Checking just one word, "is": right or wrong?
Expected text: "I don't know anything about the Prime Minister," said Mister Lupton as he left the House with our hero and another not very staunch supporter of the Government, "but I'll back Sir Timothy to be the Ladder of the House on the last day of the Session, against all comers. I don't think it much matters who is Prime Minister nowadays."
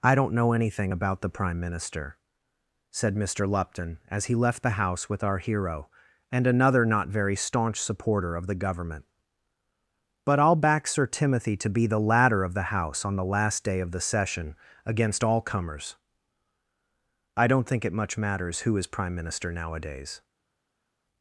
right